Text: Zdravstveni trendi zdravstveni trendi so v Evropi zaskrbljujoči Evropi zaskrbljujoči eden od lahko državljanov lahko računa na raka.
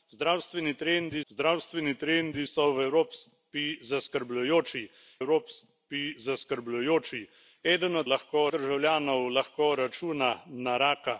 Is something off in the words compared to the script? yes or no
no